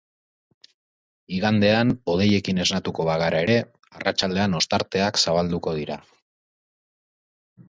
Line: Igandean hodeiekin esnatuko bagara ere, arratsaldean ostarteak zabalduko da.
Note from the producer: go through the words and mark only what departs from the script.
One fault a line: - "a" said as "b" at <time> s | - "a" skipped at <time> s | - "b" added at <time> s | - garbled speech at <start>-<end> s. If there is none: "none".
- "da" said as "dira" at 5.8 s